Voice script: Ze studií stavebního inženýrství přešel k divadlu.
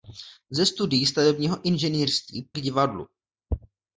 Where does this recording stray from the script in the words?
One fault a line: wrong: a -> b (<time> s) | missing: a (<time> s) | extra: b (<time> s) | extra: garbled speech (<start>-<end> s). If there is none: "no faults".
missing: přešel (2.5 s)